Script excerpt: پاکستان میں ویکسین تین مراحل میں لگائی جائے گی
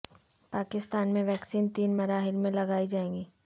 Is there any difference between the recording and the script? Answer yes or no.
no